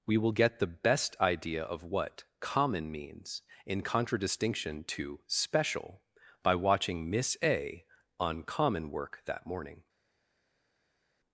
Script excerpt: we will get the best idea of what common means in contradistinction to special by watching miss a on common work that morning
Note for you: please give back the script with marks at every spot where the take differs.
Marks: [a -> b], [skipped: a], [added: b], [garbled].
we will get the best idea of what common means in contradistinction to special by watching miss a on common work that morning